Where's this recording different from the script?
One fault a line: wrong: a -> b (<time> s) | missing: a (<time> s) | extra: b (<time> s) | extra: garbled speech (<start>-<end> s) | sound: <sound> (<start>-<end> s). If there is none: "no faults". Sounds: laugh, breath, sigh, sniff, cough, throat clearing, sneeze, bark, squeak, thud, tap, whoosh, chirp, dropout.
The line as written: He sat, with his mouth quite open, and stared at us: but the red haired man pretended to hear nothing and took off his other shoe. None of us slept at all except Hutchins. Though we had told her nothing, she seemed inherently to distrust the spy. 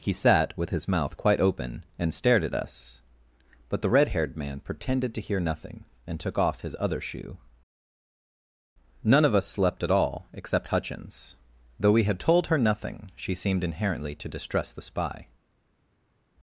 no faults